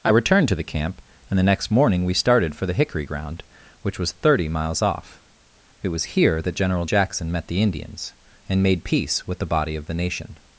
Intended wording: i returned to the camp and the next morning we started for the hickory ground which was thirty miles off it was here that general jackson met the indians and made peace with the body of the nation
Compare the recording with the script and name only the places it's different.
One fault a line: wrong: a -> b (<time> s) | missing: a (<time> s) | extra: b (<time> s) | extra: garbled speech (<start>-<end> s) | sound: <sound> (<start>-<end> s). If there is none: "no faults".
no faults